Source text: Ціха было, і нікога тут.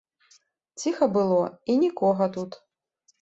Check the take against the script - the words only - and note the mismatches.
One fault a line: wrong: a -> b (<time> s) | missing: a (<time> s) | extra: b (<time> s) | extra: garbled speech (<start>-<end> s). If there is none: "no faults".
no faults